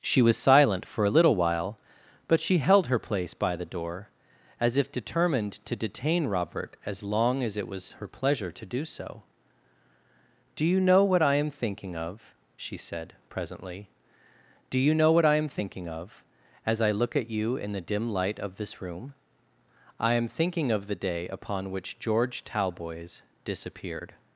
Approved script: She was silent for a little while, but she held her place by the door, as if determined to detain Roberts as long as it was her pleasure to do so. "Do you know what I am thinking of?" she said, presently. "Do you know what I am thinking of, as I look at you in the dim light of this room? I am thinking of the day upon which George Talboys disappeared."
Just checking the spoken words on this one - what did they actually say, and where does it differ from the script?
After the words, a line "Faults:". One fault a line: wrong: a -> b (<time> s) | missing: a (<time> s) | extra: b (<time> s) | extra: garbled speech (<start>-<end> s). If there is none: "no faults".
She was silent for a little while, but she held her place by the door, as if determined to detain Robert as long as it was her pleasure to do so. "Do you know what I am thinking of?" she said, presently. "Do you know what I am thinking of, as I look at you in the dim light of this room? I am thinking of the day upon which George Talboys disappeared."
Faults:
wrong: Roberts -> Robert (6.2 s)